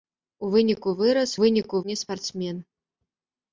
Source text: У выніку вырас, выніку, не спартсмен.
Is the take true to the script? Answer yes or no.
yes